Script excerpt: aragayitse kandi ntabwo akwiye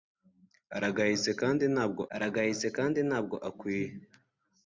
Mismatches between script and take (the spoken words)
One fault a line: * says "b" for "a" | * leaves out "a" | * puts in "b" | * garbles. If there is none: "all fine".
* puts in "aragayitse kandi ntabwo"